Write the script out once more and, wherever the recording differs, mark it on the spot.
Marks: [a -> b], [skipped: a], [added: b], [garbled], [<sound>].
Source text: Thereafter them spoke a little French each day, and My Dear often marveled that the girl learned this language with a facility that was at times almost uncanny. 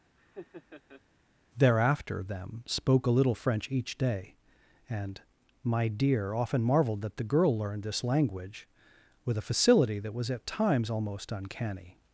[laugh] Thereafter them spoke a little French each day, and My Dear often marveled that the girl learned this language with a facility that was at times almost uncanny.